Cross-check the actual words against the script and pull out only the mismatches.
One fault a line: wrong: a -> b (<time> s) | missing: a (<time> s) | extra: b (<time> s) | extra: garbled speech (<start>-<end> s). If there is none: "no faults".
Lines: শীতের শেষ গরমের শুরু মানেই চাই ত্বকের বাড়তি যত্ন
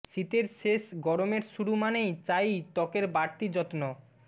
no faults